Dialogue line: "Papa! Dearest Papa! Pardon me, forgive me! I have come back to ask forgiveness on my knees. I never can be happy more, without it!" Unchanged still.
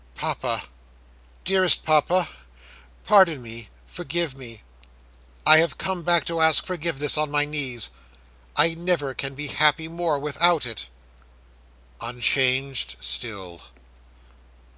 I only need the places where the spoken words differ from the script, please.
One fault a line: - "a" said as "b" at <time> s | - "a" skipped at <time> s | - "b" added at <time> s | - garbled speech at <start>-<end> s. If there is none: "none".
none